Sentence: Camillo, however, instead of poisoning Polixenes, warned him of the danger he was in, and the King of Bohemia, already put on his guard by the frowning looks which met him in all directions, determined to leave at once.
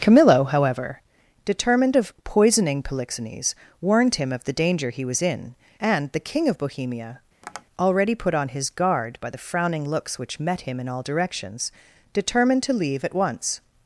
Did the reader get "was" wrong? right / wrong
right